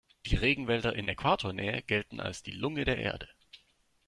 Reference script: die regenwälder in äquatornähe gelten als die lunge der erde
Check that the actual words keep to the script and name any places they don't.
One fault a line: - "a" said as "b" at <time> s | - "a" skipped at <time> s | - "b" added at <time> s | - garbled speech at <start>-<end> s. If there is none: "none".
none